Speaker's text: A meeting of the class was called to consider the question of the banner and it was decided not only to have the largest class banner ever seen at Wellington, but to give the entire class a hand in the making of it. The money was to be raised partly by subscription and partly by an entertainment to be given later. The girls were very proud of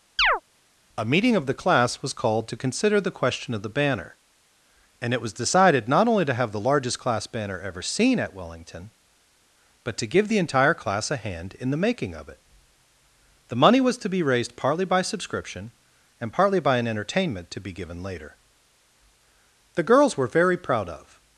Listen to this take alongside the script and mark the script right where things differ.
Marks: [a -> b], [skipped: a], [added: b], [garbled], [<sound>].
[chirp] A meeting of the class was called to consider the question of the banner and it was decided not only to have the largest class banner ever seen at Wellington, but to give the entire class a hand in the making of it. The money was to be raised partly by subscription and partly by an entertainment to be given later. The girls were very proud of